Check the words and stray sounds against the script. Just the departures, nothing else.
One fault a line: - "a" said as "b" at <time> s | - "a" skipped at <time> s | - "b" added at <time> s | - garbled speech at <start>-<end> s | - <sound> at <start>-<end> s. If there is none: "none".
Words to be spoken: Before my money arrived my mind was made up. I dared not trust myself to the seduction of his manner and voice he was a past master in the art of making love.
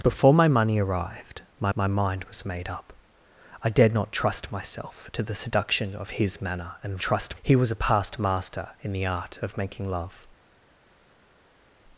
- "my" added at 1.7 s
- "voice" said as "trust" at 7.0 s